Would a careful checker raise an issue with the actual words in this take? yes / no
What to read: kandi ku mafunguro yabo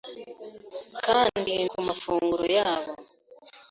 no